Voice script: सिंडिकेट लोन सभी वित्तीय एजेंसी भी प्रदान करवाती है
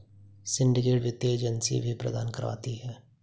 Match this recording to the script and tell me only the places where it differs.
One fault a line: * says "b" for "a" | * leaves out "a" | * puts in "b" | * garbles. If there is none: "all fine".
* leaves out "लोन सभी"